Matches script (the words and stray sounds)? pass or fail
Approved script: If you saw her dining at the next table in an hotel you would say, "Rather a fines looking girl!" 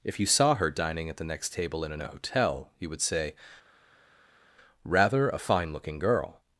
fail